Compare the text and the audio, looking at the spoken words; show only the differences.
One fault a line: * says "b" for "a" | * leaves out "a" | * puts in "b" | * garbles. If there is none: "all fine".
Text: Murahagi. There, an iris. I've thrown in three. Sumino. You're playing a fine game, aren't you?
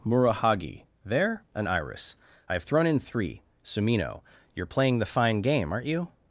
* says "the" for "a"